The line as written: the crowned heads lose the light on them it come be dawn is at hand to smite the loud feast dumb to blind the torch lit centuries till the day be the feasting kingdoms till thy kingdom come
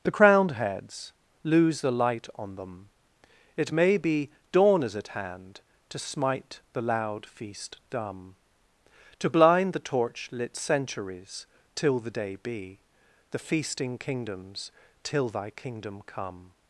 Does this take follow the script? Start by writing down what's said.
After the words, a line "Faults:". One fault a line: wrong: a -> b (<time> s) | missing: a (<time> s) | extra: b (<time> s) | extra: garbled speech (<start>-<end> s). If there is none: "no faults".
the crowned heads lose the light on them it may be dawn is at hand to smite the loud feast dumb to blind the torch lit centuries till the day be the feasting kingdoms till thy kingdom come
Faults:
wrong: come -> may (3.7 s)